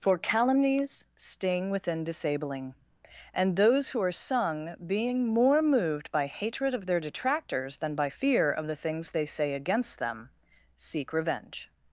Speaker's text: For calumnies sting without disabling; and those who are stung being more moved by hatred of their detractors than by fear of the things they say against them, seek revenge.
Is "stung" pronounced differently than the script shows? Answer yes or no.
yes